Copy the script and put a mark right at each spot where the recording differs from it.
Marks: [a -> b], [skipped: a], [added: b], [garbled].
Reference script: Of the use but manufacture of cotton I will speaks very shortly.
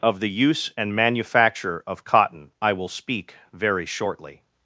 Of the use [but -> and] manufacture of cotton I will [speaks -> speak] very shortly.